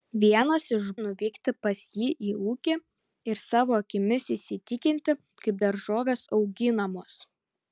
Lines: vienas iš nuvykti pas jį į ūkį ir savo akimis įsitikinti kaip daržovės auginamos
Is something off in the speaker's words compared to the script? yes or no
no